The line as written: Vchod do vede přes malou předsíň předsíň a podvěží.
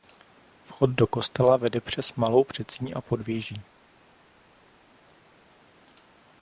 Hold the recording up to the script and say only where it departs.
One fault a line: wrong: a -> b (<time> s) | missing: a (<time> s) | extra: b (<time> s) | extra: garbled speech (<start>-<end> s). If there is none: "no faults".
extra: kostela (1.1 s)
missing: předsíň (2.9 s)